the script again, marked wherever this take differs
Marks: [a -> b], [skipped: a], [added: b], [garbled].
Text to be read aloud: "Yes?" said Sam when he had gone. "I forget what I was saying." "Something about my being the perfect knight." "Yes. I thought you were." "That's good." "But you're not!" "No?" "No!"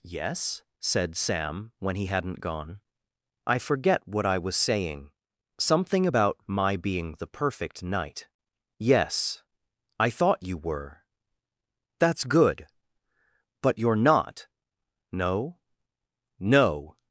"Yes?" said Sam when he [had -> hadn't] gone. "I forget what I was saying." "Something about my being the perfect knight." "Yes. I thought you were." "That's good." "But you're not!" "No?" "No!"